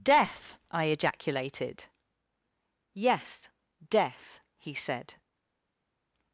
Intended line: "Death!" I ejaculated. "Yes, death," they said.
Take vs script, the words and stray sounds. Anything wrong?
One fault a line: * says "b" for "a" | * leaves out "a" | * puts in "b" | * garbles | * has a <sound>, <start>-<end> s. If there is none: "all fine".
* says "he" for "they"